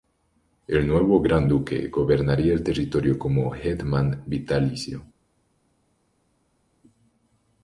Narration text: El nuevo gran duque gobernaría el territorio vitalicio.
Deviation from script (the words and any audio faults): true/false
true